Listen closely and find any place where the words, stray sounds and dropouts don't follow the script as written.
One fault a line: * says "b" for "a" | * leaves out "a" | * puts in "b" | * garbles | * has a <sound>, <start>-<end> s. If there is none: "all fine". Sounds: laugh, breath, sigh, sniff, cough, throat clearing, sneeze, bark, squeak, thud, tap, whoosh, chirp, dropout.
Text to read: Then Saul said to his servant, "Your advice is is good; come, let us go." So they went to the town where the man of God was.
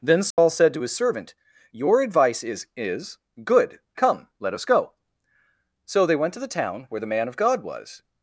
* has a dropout, 0.3-0.4 s